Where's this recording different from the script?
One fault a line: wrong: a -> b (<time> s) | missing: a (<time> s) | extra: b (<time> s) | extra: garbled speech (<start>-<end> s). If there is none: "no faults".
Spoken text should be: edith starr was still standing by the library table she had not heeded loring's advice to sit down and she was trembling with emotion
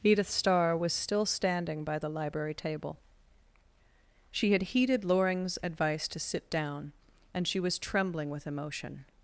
missing: not (4.6 s)